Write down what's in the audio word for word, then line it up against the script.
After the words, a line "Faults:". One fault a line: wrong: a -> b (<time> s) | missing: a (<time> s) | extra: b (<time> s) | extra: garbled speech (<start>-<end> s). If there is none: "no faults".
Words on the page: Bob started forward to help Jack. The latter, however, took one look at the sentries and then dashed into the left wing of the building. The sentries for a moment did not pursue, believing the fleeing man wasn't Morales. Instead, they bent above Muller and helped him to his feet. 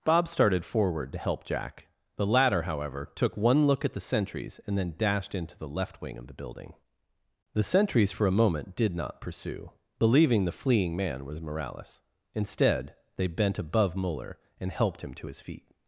Bob started forward to help Jack. The latter, however, took one look at the sentries and then dashed into the left wing of the building. The sentries for a moment did not pursue, believing the fleeing man was Morales. Instead, they bent above Muller and helped him to his feet.
Faults:
wrong: wasn't -> was (11.2 s)